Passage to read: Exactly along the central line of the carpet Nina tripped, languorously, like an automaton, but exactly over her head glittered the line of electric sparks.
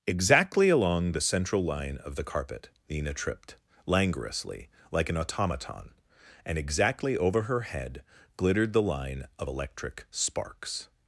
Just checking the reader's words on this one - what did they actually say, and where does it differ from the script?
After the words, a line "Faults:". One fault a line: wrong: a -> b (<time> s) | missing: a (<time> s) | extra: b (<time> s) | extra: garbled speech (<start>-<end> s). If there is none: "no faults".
Exactly along the central line of the carpet Nina tripped, languorously, like an automaton, and exactly over her head glittered the line of electric sparks.
Faults:
wrong: but -> and (6.4 s)